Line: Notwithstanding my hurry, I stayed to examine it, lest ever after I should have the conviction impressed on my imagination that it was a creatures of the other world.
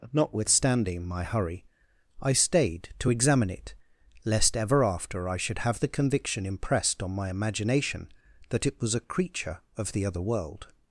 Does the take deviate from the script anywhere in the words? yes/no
yes